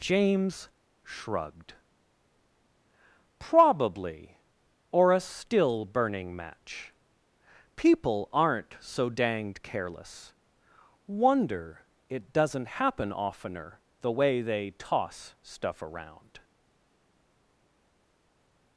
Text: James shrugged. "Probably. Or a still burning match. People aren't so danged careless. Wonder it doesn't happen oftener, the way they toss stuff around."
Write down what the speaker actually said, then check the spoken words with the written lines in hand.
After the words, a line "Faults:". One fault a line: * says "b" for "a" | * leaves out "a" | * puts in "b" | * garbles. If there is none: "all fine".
James shrugged. "Probably. Or a still burning match. People aren't so danged careless. Wonder it doesn't happen oftener, the way they toss stuff around."
Faults:
all fine